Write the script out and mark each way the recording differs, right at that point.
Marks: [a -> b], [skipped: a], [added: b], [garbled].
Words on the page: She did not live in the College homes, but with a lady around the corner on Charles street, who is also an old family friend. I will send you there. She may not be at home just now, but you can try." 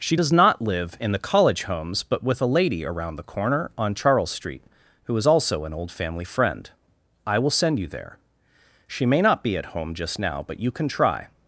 She [did -> does] not live in the College homes, but with a lady around the corner on Charles street, who is also an old family friend. I will send you there. She may not be at home just now, but you can try."